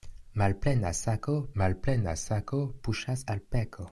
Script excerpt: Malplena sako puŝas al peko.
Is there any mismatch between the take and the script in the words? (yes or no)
yes